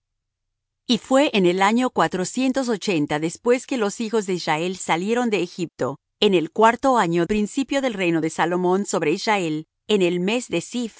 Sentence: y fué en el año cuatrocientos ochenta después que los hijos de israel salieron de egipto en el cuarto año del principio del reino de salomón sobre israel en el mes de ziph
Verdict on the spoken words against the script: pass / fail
fail